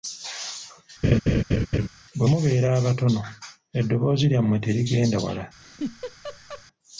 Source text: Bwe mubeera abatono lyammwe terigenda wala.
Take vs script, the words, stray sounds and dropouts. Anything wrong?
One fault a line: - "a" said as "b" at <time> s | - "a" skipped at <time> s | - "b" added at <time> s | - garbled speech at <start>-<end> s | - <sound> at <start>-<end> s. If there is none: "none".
- laugh at 1.0-1.9 s
- "eddoboozi" added at 3.8 s
- laugh at 5.6-6.6 s